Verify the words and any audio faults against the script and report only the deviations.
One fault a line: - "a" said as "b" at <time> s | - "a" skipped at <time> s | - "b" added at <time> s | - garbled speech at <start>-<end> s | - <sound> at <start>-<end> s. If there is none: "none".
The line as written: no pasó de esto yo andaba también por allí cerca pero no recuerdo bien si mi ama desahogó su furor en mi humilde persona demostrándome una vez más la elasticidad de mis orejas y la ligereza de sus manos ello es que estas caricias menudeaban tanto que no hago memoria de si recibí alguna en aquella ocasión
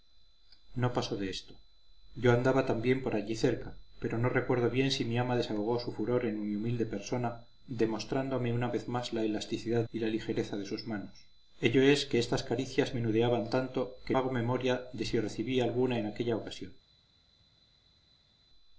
- "de mis orejas" skipped at 9.8 s
- "no" skipped at 14.2 s